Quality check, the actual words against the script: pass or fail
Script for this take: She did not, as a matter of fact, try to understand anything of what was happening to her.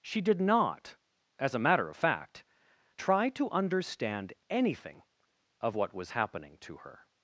pass